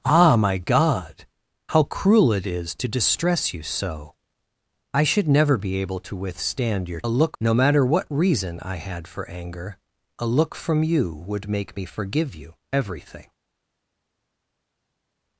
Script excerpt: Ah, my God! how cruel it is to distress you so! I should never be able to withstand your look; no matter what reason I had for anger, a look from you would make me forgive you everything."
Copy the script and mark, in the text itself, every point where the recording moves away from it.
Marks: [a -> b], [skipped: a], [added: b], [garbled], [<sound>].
Ah, my God! how cruel it is to distress you so! I should never be able to withstand your look; no matter what reason I had for anger, a look from you would make me forgive you everything."